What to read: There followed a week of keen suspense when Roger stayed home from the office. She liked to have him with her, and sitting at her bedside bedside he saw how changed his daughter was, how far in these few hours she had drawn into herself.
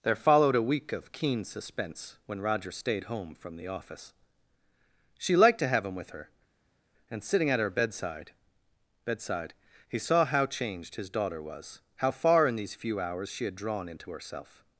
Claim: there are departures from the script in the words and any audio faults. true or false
false